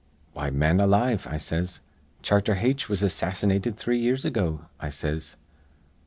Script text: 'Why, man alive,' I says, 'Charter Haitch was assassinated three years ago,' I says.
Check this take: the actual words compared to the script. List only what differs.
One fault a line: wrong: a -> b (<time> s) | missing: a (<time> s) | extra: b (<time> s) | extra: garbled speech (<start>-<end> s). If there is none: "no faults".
no faults